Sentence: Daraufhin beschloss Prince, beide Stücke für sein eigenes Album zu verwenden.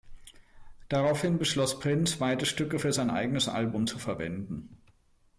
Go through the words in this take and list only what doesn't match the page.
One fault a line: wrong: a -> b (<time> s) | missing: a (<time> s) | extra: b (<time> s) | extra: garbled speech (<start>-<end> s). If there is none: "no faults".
no faults